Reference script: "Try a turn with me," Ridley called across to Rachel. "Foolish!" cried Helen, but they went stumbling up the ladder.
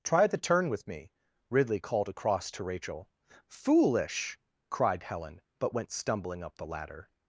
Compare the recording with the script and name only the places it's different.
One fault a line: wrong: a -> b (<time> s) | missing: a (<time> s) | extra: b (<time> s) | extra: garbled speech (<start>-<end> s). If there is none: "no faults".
wrong: a -> the (0.2 s)
missing: they (5.8 s)